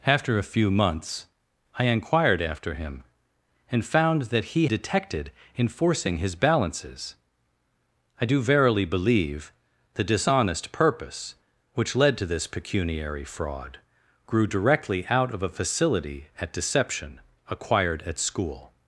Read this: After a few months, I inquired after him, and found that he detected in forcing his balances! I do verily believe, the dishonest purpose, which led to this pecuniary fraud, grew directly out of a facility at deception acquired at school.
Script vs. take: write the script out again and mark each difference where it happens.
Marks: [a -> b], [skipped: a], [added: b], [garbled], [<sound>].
After a few months, I inquired after him, and found that he detected in forcing his balances! I do verily believe, the dishonest purpose, which led to this pecuniary fraud, grew directly out of a facility at deception acquired at school.